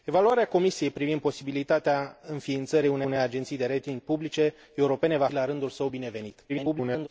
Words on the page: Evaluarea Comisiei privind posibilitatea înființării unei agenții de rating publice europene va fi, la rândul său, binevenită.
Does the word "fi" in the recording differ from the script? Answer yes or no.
yes